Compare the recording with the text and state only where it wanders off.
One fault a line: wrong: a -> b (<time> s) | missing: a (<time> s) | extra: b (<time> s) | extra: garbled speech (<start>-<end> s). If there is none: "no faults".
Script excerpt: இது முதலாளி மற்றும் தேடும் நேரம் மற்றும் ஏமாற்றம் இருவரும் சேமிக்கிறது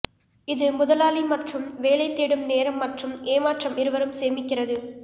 extra: வேலை (1.8 s)